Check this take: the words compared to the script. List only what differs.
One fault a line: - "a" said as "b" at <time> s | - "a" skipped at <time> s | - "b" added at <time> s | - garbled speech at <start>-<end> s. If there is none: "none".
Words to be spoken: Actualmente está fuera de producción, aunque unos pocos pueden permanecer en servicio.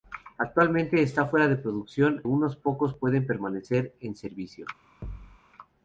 - "aunque" skipped at 2.2 s